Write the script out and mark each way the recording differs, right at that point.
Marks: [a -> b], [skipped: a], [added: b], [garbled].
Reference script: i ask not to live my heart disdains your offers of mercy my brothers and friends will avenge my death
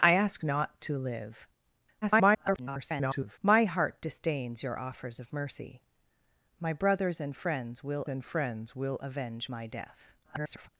i ask not to live [garbled] my heart disdains your offers of mercy my brothers and friends will [added: and friends will] avenge my death [garbled]